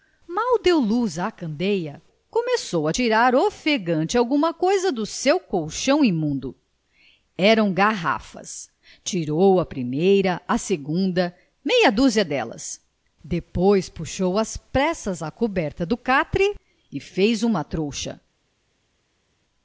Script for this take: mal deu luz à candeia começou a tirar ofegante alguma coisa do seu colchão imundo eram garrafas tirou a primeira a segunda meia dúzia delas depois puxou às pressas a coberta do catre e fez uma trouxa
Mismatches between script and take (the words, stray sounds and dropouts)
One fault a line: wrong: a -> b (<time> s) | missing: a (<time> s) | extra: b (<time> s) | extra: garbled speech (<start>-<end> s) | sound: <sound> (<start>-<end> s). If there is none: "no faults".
no faults